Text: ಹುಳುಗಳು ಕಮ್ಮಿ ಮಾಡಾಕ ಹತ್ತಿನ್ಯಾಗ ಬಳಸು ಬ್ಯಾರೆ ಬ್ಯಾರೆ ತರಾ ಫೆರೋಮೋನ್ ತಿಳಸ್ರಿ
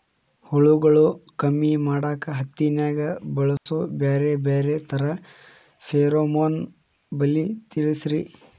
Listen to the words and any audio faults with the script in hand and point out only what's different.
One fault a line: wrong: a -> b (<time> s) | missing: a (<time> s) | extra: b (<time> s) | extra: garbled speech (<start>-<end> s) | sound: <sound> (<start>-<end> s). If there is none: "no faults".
sound: dropout (3.6-3.7 s)
extra: ಬಲಿ (7.1 s)